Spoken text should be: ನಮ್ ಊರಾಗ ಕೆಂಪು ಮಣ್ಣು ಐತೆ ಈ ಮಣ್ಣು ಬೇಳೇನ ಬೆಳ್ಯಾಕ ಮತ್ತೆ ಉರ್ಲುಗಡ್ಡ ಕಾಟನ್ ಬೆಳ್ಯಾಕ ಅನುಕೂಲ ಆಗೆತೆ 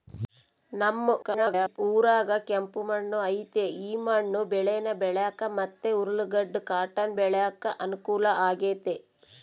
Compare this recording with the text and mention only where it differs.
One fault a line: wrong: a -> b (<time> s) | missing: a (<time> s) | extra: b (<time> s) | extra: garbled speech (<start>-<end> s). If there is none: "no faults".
extra: garbled speech (1.2-1.8 s)